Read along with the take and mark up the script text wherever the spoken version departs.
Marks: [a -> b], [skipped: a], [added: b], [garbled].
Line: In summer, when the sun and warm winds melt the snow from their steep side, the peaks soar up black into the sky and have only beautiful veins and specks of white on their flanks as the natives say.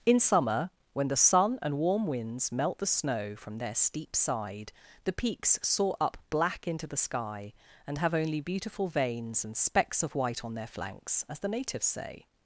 In summer, when the sun and warm winds melt the snow from their steep side, the peaks soar up black into the sky and have only beautiful veins and specks of white on their flanks as the natives say.